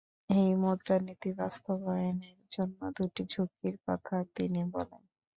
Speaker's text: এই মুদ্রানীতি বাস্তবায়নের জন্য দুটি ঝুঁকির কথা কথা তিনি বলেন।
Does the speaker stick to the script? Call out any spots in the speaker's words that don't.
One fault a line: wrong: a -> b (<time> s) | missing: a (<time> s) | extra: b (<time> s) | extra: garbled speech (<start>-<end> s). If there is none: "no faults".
missing: কথা (4.2 s)